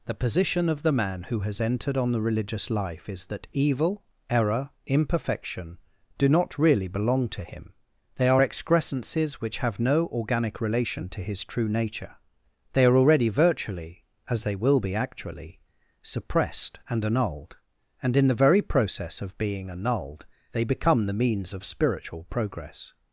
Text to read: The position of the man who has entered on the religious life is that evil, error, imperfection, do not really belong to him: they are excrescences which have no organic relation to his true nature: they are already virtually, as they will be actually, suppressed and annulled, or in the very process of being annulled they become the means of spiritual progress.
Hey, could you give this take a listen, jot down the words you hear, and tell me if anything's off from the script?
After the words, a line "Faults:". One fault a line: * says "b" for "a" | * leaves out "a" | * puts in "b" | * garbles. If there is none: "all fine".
The position of the man who has entered on the religious life is that evil, error, imperfection, do not really belong to him: they are excrescences which have no organic relation to his true nature: they are already virtually, as they will be actually, suppressed and annulled, and in the very process of being annulled they become the means of spiritual progress.
Faults:
* says "and" for "or"